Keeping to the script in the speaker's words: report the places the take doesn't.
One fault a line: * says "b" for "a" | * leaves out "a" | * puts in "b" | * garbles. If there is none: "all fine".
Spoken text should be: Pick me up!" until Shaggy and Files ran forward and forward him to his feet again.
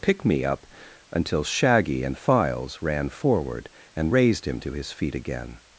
* says "raised" for "forward"